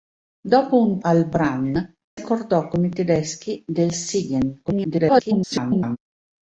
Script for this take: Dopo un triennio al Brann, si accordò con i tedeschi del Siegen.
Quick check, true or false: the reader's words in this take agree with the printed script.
false